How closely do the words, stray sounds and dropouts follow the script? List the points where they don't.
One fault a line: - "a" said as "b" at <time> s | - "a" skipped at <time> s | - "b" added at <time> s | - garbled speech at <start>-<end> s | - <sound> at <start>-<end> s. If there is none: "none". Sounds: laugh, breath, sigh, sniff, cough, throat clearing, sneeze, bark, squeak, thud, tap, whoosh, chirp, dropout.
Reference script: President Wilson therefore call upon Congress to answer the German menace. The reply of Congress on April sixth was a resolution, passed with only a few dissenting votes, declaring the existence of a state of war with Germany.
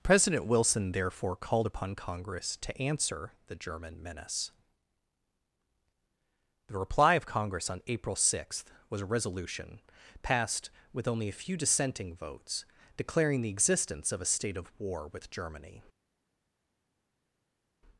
- "call" said as "called" at 1.4 s